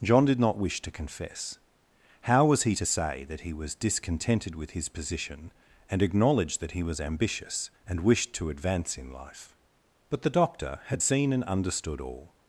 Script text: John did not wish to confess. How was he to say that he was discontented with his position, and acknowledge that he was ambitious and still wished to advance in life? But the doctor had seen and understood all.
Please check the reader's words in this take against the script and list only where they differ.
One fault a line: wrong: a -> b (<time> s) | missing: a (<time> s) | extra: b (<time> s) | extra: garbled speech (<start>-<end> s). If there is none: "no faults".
missing: still (8.0 s)